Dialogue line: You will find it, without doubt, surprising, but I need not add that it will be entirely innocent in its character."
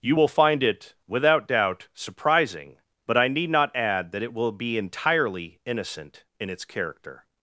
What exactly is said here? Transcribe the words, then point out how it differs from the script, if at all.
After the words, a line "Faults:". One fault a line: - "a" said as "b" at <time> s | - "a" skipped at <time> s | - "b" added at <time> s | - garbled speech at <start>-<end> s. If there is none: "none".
You will find it, without doubt, surprising, but I need not add that it will be entirely innocent in its character."
Faults:
none